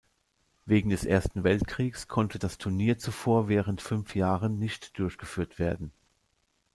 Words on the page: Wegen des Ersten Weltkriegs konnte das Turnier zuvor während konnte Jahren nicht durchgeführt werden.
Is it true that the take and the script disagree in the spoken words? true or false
true